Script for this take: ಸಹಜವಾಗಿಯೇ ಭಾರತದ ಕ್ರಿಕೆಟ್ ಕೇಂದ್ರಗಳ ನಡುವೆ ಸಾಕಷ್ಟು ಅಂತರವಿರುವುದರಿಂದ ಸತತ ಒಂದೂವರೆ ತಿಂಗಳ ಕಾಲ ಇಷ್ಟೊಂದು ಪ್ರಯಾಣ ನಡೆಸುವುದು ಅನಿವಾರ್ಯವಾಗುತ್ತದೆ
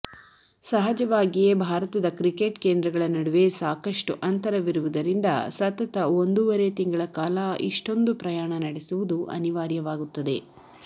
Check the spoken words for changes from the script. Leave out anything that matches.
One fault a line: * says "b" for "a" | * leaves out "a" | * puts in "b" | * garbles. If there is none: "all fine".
all fine